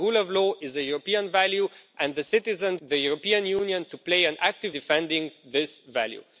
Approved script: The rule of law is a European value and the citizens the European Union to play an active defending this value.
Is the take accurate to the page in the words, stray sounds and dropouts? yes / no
yes